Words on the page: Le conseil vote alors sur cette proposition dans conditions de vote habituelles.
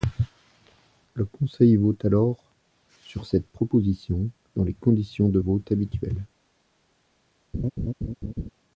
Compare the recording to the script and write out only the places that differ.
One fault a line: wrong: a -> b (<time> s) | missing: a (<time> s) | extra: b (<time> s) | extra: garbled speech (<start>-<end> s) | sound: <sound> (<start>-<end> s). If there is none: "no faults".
extra: les (4.6 s)
sound: laugh (7.5-8.5 s)